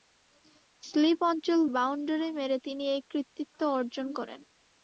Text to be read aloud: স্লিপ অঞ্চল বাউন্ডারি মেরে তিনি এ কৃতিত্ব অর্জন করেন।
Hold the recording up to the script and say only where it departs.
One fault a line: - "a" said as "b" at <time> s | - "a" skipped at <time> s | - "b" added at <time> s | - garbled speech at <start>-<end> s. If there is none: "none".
none